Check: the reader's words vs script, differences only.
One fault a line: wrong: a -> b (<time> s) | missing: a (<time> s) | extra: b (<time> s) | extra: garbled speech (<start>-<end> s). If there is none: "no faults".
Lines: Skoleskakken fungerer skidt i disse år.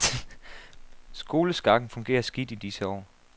no faults